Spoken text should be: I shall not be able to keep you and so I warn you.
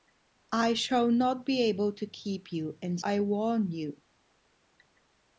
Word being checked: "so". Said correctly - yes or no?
no